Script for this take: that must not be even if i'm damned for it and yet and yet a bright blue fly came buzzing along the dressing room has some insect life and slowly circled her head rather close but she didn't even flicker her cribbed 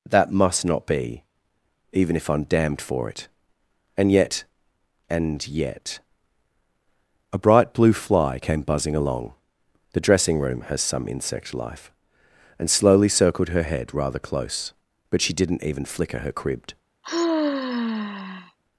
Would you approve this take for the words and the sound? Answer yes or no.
no